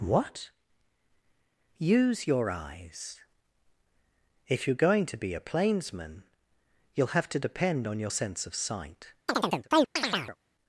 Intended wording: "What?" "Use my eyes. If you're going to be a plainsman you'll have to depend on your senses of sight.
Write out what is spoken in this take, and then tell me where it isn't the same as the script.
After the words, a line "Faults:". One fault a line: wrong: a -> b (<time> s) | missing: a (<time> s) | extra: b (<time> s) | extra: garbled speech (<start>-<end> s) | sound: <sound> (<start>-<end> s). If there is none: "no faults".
"What?" "Use your eyes. If you're going to be a plainsman you'll have to depend on your sense of sight.
Faults:
wrong: my -> your (2.2 s)
wrong: senses -> sense (8.1 s)
sound: chirp (9.3-10.4 s)